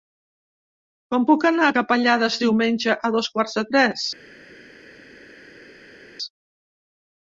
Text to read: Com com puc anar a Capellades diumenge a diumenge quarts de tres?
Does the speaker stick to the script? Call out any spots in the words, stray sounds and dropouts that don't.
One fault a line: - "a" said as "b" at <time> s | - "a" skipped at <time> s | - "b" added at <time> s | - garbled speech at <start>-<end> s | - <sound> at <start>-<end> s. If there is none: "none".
- "com" skipped at 1.3 s
- "diumenge" said as "dos" at 3.2 s